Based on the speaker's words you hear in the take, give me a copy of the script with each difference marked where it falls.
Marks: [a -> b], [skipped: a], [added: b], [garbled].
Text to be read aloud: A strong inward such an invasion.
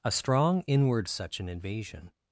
A strong inward such an invasion.